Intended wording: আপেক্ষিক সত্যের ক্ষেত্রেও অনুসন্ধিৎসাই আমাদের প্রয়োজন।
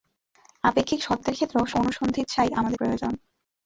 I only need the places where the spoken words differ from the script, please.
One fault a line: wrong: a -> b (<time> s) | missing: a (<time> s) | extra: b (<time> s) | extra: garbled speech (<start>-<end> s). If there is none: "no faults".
no faults